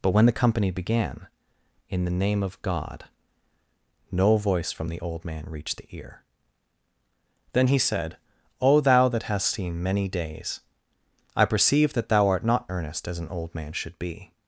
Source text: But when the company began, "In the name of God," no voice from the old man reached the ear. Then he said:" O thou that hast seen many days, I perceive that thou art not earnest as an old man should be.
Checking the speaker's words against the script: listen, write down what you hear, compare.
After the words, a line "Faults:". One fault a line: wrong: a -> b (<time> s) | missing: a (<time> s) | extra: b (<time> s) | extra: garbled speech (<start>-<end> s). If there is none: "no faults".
But when the company began, "In the name of God," no voice from the old man reached the ear. Then he said:" O thou that hast seen many days, I perceive that thou art not earnest as an old man should be.
Faults:
no faults